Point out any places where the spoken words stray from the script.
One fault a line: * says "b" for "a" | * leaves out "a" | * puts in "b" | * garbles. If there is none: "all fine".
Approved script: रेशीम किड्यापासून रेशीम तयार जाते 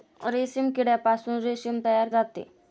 all fine